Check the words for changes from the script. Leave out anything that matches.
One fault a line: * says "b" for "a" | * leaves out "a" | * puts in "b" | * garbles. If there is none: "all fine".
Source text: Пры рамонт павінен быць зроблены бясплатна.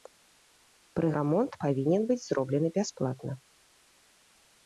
all fine